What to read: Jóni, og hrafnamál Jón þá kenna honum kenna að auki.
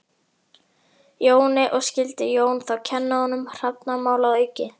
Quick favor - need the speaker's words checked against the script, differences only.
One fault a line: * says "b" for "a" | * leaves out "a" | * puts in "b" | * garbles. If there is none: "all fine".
* says "skyldi" for "hrafnamál"
* says "hrafnamál" for "kenna"